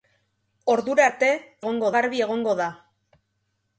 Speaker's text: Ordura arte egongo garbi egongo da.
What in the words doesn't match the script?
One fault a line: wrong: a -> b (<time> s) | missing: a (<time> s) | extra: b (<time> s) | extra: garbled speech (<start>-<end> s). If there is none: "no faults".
no faults